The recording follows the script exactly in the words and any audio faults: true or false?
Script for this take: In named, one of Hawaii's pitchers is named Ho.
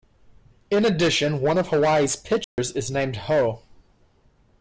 false